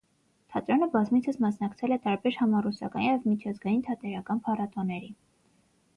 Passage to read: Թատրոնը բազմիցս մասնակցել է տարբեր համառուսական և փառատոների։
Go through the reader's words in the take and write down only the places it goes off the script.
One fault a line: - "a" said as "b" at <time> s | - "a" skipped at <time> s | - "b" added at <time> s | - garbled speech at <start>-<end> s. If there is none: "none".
- "միջազգային թատերական" added at 3.3 s